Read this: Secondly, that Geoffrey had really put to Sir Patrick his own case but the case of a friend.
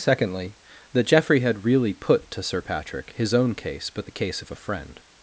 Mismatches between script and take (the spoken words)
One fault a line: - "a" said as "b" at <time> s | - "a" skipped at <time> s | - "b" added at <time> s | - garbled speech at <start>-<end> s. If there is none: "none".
none